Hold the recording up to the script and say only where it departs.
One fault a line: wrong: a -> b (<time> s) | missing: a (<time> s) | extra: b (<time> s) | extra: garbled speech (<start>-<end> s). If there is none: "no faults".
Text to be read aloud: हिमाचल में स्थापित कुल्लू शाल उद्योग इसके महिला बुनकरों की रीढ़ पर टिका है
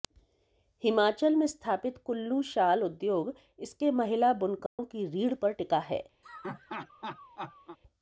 no faults